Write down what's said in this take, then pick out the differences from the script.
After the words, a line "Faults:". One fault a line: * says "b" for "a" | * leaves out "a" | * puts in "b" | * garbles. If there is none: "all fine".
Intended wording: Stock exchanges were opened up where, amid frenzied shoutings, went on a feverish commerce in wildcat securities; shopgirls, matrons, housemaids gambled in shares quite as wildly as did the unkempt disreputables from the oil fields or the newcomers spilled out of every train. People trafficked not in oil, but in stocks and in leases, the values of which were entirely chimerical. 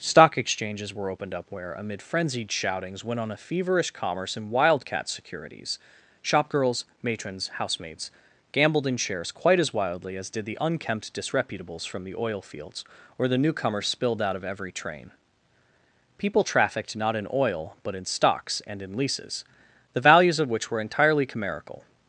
Stock exchanges were opened up where, amid frenzied shoutings, went on a feverish commerce in wildcat securities; shopgirls, matrons, housemaids gambled in shares quite as wildly as did the unkempt disreputables from the oil fields or the newcomers spilled out of every train. People trafficked not in oil, but in stocks and in leases, the values of which were entirely chimerical.
Faults:
all fine